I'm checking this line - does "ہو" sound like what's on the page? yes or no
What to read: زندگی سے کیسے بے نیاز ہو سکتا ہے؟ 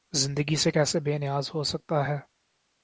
yes